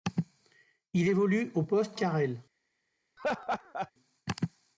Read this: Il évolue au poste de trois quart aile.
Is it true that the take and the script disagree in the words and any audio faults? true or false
true